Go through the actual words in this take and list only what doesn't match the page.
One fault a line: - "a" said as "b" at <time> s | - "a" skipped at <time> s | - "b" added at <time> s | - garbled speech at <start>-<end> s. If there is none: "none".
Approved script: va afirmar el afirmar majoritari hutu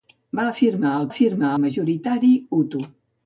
none